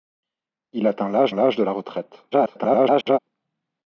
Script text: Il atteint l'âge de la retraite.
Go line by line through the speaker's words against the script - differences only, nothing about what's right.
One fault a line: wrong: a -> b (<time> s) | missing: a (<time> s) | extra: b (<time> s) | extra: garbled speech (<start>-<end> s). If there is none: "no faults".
extra: l'âge (1.3 s)
extra: garbled speech (2.3-3.2 s)